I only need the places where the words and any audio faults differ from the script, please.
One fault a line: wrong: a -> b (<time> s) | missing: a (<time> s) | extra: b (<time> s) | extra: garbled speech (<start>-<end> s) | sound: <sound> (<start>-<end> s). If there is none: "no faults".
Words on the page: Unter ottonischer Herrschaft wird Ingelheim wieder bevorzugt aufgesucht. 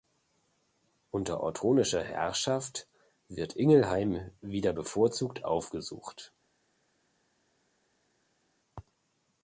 no faults